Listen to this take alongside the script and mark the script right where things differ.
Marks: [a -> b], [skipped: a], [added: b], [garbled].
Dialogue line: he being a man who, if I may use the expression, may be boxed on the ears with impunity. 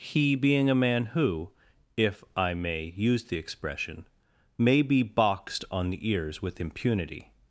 he being a man who, if I may use the expression, may be boxed on the ears with impunity.